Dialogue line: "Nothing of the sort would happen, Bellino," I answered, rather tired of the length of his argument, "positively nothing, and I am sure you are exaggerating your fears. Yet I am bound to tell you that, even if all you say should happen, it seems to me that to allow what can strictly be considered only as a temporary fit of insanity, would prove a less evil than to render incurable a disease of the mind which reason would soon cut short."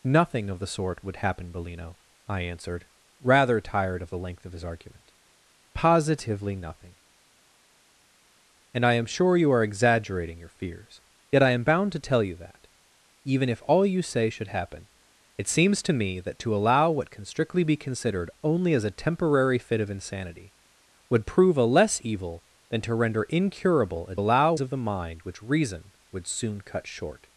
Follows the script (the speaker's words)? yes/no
no